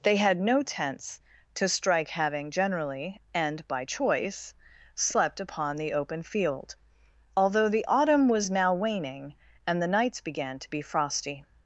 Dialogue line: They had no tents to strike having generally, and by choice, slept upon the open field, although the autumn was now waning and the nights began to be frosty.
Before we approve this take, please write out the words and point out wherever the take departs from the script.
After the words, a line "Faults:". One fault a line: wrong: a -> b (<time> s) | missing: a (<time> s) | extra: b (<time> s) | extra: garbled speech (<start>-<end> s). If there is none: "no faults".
They had no tents to strike having generally, and by choice, slept upon the open field, although the autumn was now waning and the nights began to be frosty.
Faults:
no faults